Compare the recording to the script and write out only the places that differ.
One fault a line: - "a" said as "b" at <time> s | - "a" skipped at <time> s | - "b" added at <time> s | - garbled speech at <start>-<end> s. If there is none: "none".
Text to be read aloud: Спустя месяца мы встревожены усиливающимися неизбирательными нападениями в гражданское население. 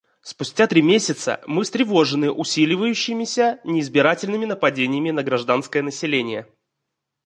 - "три" added at 0.6 s
- "в" said as "на" at 5.1 s